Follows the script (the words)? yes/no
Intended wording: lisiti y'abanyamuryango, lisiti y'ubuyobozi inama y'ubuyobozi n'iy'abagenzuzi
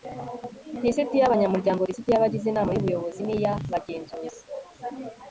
no